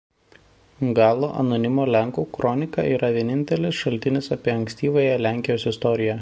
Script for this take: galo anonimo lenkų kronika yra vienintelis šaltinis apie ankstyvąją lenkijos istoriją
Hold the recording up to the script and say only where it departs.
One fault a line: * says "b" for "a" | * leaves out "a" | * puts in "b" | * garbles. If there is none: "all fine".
all fine